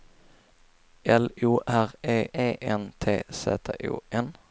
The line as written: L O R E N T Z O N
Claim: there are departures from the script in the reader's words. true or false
true